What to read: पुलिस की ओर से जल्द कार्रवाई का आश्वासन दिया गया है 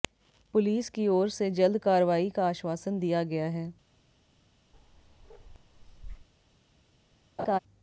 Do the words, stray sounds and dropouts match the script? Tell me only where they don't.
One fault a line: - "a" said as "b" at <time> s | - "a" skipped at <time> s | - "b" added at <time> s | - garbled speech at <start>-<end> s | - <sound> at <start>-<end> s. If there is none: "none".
- bark at 4.7-6.3 s
- laugh at 7.4-7.6 s